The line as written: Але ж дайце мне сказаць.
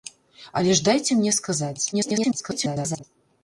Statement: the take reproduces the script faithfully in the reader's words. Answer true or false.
false